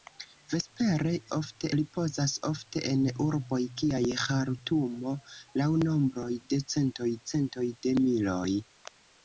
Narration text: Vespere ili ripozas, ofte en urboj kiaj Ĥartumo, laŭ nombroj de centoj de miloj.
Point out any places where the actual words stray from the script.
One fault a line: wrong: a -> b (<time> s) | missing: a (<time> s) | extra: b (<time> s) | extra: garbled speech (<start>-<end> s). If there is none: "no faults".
wrong: ili -> ofte (1.4 s)
extra: centoj (7.3 s)